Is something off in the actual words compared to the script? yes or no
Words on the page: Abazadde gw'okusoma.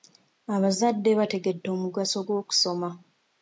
yes